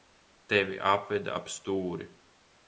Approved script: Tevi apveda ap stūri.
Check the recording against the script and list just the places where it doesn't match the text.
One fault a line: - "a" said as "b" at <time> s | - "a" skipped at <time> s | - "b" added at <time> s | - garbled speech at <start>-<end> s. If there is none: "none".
none